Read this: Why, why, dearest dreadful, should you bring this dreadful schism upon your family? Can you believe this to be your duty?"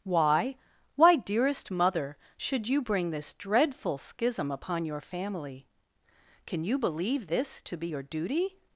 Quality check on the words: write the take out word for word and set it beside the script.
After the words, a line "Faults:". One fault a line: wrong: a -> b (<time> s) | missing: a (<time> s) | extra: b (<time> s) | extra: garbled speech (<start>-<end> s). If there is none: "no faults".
Why, why, dearest mother, should you bring this dreadful schism upon your family? Can you believe this to be your duty?"
Faults:
wrong: dreadful -> mother (1.7 s)